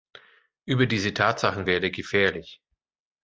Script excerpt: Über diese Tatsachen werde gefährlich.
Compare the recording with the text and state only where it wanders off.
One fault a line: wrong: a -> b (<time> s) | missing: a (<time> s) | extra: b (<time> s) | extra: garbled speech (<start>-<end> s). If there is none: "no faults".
no faults